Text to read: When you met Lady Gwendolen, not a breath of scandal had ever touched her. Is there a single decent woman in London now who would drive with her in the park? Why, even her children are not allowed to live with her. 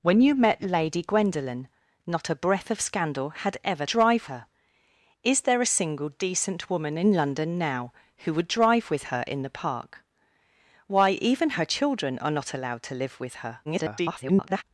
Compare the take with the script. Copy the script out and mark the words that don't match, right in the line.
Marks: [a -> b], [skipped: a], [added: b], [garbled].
When you met Lady Gwendolen, not a breath of scandal had ever [touched -> drive] her. Is there a single decent woman in London now who would drive with her in the park? Why, even her children are not allowed to live with her. [garbled]